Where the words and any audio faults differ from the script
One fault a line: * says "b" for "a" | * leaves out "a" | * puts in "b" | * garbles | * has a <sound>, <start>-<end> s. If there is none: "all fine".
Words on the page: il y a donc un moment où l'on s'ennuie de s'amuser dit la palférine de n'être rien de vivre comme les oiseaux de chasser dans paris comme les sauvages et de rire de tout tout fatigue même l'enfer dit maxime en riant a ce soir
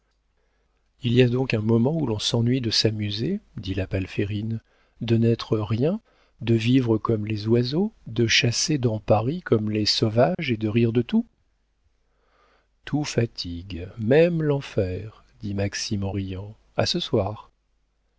* has a dropout, 10.3-10.4 s